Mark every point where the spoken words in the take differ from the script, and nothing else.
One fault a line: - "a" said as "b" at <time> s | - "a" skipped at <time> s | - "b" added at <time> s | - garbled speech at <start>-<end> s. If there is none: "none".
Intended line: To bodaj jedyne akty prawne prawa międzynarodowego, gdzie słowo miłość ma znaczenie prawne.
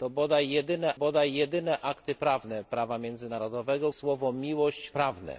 - "bodaj jedyne" added at 0.9 s
- "gdzie" skipped at 3.9 s
- "ma znaczenie" skipped at 4.9 s